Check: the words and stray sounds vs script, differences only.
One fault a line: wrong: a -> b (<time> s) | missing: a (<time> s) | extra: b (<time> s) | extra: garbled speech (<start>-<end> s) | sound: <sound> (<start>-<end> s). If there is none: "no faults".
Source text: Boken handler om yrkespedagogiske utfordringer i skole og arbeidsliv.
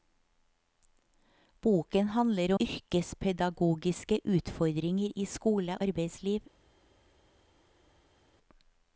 missing: om (2.5 s)
missing: og (5.8 s)